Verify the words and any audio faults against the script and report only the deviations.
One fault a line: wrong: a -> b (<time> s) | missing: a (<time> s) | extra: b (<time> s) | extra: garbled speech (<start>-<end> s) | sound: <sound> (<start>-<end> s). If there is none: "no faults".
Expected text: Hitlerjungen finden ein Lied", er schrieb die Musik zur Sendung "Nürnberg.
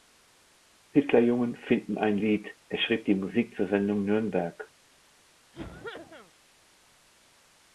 sound: cough (5.5-6.3 s)